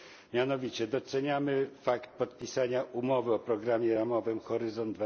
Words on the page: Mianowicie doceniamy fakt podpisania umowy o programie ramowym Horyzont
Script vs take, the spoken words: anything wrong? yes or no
no